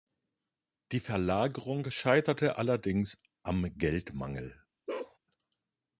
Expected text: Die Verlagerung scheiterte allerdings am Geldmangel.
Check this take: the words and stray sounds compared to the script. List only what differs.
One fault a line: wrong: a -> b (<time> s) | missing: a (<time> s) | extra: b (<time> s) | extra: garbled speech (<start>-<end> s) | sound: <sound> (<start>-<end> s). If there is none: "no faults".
sound: bark (4.9-5.2 s)